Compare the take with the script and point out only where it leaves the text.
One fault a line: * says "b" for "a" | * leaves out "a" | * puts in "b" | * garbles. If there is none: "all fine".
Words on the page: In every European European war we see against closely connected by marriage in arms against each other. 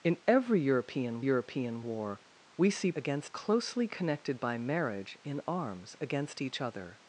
all fine